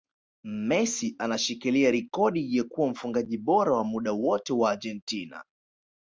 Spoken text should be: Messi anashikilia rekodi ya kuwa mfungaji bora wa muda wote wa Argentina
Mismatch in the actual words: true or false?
false